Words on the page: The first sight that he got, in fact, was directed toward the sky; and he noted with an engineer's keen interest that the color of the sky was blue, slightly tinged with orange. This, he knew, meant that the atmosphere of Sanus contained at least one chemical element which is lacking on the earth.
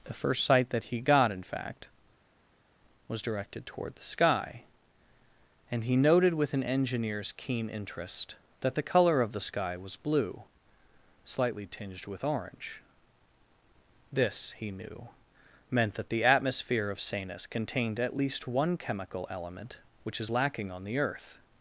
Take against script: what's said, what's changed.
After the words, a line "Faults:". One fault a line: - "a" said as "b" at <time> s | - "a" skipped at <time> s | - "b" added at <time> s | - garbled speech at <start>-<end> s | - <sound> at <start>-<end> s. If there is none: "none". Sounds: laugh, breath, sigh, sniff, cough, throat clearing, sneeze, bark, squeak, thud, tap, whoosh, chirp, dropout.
The first sight that he got, in fact, was directed toward the sky; and he noted with an engineer's keen interest that the color of the sky was blue, slightly tinged with orange. This, he knew, meant that the atmosphere of Sanus contained at least one chemical element which is lacking on the earth.
Faults:
none